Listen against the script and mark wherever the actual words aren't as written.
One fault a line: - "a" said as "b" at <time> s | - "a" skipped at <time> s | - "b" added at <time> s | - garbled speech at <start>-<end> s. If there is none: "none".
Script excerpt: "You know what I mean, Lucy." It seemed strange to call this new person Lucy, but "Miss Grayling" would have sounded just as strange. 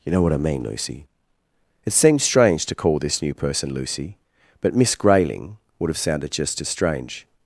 none